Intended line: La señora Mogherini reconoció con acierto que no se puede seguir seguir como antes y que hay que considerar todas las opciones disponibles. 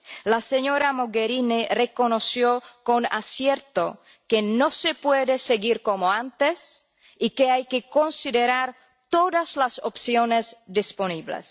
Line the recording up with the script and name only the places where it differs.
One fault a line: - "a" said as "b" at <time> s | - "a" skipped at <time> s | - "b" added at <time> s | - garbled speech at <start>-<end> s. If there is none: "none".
- "seguir" skipped at 5.8 s